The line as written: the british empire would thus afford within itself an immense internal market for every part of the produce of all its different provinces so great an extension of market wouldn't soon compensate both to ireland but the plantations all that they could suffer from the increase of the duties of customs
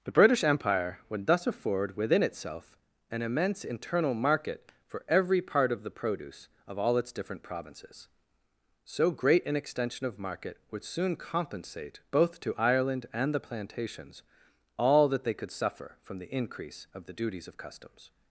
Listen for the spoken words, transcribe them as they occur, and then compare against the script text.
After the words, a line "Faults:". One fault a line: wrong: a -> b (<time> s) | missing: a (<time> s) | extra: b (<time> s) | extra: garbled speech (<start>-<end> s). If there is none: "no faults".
the british empire would thus afford within itself an immense internal market for every part of the produce of all its different provinces so great an extension of market would soon compensate both to ireland and the plantations all that they could suffer from the increase of the duties of customs
Faults:
wrong: wouldn't -> would (10.7 s)
wrong: but -> and (13.1 s)